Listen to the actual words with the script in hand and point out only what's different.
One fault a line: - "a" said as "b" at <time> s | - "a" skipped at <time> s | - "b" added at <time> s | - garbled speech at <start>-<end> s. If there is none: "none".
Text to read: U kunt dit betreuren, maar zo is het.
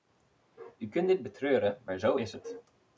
none